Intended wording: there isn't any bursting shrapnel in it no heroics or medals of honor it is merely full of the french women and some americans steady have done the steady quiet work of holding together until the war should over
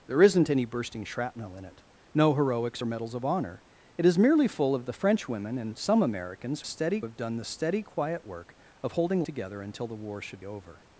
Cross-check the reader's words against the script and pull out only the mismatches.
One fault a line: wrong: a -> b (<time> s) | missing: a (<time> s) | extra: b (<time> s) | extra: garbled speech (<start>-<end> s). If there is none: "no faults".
no faults